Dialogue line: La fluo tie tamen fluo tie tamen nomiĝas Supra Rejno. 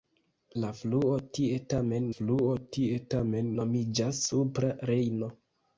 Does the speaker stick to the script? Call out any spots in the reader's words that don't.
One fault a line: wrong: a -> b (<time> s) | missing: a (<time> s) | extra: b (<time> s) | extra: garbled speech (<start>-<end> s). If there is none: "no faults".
no faults